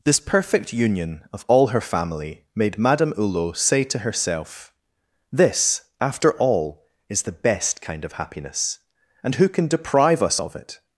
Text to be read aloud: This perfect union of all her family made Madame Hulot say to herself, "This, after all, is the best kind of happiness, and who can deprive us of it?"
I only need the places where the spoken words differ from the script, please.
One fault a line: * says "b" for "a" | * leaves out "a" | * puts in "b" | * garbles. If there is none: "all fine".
all fine